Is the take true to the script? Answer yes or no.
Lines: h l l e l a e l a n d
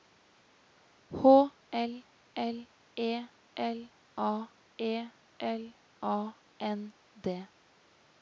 yes